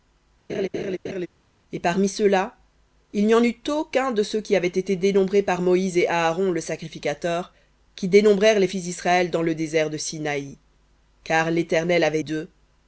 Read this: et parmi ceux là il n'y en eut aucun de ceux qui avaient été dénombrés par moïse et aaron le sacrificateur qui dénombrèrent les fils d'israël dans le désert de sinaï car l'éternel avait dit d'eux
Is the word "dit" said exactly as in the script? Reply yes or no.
no